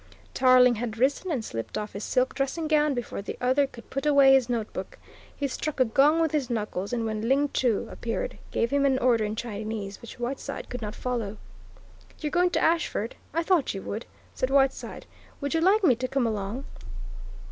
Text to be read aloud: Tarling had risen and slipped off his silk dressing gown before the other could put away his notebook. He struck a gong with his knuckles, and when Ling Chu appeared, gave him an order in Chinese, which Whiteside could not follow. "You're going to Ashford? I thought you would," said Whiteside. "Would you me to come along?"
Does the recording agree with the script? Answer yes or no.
no